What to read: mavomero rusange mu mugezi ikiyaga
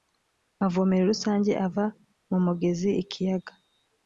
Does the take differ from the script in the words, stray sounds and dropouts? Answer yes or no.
yes